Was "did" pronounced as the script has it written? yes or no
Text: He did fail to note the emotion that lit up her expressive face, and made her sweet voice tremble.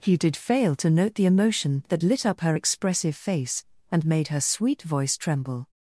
yes